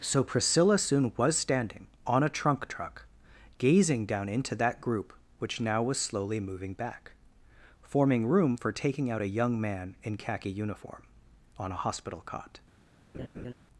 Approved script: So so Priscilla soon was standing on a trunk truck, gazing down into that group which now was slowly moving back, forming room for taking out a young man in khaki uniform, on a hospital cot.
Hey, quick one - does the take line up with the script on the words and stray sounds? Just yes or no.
no